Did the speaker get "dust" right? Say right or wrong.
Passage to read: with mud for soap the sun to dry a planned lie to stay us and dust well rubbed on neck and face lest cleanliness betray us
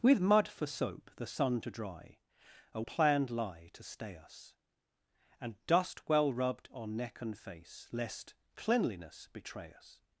right